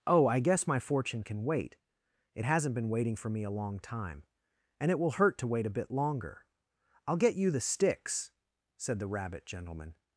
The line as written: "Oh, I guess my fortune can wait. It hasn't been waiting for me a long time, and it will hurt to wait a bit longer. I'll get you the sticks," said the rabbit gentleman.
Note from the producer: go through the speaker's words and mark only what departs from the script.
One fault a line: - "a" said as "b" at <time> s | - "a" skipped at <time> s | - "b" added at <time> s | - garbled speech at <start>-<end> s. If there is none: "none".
none